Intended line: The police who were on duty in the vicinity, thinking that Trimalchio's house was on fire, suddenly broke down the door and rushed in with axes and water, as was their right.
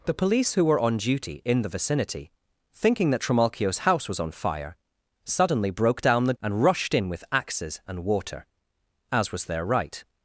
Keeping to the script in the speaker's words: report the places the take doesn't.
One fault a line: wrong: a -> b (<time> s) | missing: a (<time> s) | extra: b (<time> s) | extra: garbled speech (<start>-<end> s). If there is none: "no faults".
missing: door (6.3 s)